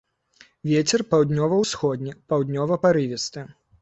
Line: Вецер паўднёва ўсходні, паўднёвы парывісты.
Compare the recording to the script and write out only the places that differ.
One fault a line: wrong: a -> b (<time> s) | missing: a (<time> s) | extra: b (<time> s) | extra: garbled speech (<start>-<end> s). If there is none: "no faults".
no faults